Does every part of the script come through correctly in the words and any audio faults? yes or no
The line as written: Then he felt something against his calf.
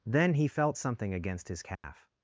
no